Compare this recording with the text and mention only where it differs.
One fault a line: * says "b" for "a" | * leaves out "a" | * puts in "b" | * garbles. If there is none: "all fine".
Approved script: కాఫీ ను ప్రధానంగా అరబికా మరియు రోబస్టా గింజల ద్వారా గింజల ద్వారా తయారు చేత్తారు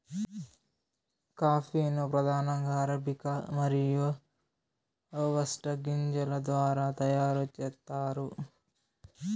* leaves out "గింజల ద్వారా"